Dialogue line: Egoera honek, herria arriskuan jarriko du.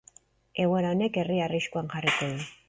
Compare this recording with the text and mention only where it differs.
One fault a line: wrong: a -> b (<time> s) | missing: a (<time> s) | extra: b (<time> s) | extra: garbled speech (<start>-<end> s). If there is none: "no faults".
no faults